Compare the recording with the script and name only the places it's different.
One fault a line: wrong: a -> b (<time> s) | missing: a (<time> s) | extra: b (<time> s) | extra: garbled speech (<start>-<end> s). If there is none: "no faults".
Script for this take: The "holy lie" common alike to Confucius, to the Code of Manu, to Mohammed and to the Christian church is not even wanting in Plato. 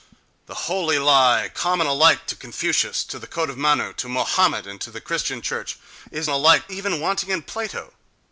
wrong: not -> alike (6.3 s)